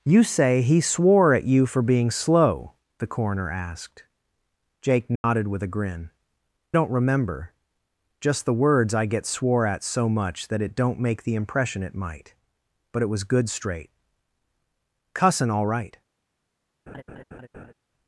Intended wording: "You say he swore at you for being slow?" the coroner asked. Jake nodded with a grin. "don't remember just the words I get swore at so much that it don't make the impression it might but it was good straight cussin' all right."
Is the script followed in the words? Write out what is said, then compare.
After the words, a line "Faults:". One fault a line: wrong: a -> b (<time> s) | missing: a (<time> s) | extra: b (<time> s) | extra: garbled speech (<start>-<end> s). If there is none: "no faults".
"You say he swore at you for being slow?" the coroner asked. Jake nodded with a grin. "don't remember just the words I get swore at so much that it don't make the impression it might but it was good straight cussin' all right."
Faults:
no faults